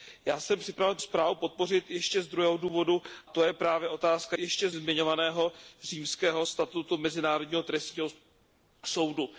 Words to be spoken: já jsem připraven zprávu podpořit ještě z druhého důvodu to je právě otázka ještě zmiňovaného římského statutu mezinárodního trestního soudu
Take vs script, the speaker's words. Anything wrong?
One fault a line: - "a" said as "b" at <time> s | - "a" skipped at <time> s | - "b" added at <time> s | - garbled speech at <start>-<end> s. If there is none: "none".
none